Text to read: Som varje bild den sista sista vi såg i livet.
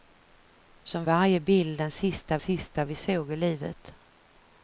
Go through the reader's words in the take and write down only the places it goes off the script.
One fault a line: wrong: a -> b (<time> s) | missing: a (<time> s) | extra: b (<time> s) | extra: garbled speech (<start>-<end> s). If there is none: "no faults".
no faults